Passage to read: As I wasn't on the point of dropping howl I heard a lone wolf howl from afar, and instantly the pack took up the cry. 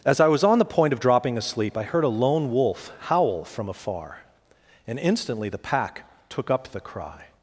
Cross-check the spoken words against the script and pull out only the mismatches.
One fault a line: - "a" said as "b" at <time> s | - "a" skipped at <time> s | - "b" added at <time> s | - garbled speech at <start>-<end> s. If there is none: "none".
- "wasn't" said as "was" at 0.3 s
- "howl" said as "asleep" at 1.4 s